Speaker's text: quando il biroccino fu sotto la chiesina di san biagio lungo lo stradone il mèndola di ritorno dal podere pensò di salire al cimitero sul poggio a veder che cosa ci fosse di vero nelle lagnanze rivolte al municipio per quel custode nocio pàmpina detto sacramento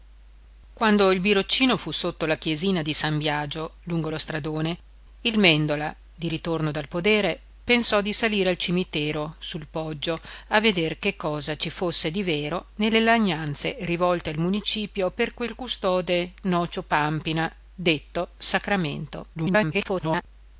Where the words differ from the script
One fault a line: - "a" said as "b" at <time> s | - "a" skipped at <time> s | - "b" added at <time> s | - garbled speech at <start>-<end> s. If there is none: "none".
- garbled speech at 19.3-20.2 s